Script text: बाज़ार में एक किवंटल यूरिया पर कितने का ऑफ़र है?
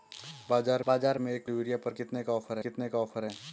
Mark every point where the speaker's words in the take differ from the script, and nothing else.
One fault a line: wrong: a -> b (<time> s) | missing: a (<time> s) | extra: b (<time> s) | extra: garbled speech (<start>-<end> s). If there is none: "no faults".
extra: बाज़ार (0.9 s)
missing: किवंटल (1.4 s)
extra: कितने का ऑफ़र (2.6 s)